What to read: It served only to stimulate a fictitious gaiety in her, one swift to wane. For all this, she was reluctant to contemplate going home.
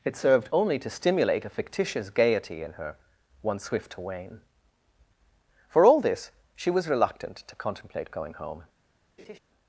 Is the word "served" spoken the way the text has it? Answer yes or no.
yes